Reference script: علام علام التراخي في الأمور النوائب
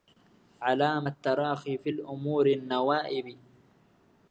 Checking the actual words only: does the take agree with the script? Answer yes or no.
no